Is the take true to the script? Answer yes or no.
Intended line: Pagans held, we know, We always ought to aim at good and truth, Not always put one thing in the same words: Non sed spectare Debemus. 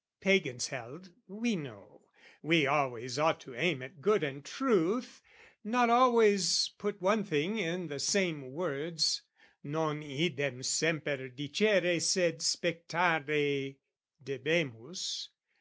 no